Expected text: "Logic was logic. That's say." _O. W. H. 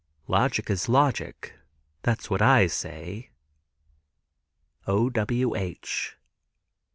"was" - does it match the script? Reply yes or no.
no